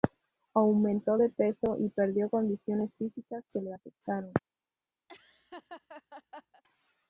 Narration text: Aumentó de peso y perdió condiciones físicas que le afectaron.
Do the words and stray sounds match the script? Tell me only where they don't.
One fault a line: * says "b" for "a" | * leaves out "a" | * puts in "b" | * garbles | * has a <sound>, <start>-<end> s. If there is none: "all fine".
* has a laugh, 5.1-6.6 s